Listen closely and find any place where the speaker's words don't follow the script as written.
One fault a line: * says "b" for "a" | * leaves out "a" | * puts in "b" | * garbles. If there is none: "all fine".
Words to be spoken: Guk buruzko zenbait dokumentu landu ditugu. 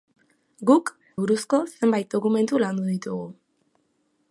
all fine